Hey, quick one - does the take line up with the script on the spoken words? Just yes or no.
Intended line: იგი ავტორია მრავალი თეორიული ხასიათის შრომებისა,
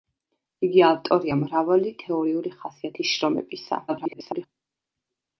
no